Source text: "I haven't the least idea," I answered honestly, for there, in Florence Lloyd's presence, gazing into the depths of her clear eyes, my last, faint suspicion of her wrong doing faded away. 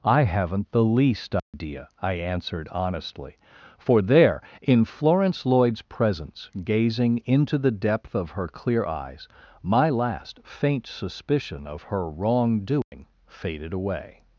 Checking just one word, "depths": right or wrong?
wrong